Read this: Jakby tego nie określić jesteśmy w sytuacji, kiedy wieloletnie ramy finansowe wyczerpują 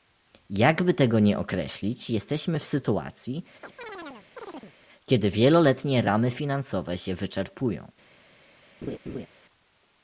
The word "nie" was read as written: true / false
true